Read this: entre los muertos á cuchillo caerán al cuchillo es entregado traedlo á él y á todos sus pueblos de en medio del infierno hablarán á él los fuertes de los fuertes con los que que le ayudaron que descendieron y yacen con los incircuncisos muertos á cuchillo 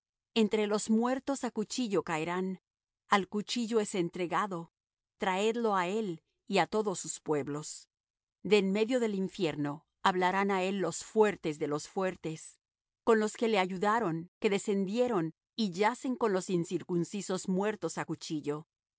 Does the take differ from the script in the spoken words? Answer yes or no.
yes